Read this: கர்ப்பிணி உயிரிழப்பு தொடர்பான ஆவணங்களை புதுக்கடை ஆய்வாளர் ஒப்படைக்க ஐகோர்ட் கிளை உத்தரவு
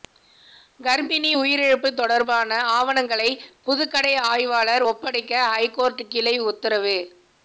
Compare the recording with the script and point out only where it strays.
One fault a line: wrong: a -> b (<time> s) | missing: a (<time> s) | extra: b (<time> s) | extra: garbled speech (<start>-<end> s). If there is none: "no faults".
no faults